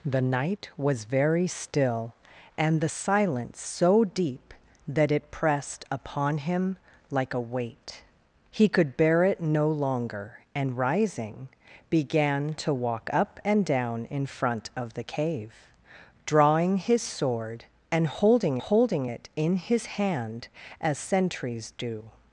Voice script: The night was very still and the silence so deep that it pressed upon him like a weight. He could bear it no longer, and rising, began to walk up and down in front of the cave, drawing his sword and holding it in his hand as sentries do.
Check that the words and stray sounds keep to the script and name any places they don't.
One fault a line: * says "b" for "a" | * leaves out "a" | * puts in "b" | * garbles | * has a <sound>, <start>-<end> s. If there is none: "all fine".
* puts in "holding"